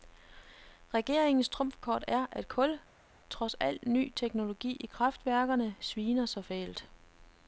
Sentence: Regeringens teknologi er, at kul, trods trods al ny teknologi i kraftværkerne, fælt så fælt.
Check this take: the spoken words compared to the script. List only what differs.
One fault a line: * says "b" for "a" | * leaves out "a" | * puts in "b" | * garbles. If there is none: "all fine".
* says "trumfkort" for "teknologi"
* leaves out "trods"
* says "sviner" for "fælt"